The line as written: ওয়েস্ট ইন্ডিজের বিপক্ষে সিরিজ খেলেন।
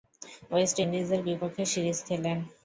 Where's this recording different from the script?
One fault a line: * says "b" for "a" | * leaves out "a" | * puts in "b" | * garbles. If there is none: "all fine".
all fine